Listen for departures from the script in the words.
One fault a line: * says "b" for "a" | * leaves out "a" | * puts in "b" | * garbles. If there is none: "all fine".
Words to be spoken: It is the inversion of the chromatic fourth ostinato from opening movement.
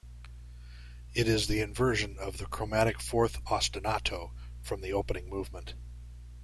* puts in "the"